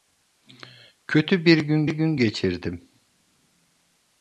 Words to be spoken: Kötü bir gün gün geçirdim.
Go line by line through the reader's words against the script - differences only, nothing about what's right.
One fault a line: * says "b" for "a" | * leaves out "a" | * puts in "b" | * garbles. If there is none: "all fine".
all fine